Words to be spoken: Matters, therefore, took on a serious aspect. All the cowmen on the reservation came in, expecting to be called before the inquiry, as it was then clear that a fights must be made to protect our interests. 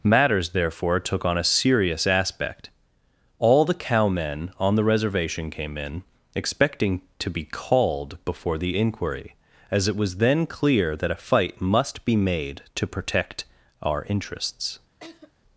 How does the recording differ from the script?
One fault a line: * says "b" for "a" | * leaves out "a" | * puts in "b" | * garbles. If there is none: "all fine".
* says "fight" for "fights"